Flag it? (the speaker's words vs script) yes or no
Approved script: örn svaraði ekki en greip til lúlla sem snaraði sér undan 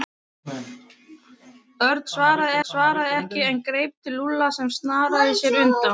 yes